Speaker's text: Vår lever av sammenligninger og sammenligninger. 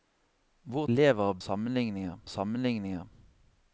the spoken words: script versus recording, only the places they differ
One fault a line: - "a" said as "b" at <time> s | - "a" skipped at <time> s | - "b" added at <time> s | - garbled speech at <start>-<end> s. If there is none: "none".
none